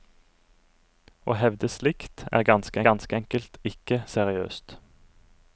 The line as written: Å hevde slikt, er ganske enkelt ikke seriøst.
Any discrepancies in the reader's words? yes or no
yes